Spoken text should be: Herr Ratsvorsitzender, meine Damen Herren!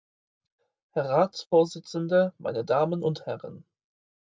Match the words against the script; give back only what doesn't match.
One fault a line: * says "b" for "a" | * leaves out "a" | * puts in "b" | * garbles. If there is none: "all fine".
* puts in "und"